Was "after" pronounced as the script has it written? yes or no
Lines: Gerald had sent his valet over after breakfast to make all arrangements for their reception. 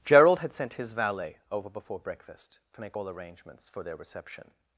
no